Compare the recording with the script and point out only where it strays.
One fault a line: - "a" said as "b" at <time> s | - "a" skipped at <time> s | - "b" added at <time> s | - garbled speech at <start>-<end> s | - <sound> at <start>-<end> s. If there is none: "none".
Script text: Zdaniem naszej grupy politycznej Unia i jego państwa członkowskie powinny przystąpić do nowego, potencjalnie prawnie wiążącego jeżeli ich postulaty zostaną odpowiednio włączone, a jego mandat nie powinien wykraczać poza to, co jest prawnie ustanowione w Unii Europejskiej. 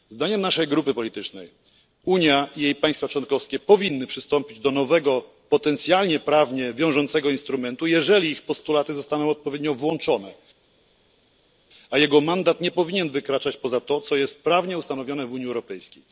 - "jego" said as "jej" at 2.6 s
- "instrumentu" added at 7.3 s